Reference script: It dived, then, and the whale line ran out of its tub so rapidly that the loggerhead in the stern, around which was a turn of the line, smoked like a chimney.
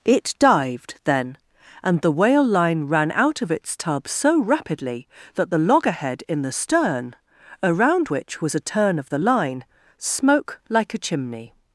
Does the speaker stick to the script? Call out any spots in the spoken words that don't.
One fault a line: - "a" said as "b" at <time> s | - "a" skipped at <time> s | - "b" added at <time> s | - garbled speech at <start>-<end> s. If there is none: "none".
- "smoked" said as "smoke" at 10.0 s